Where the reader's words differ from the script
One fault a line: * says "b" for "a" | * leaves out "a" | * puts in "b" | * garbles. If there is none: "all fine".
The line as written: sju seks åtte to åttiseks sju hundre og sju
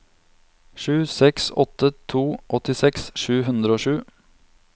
all fine